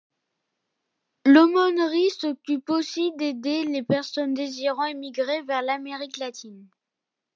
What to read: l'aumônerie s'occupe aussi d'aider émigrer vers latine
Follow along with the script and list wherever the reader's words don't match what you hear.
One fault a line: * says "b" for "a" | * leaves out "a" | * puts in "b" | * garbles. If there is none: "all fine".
* puts in "les personnes désirant"
* puts in "l'amérique"